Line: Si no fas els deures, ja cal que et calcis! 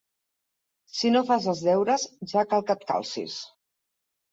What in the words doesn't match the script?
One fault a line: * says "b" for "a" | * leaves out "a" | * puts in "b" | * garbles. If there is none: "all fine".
all fine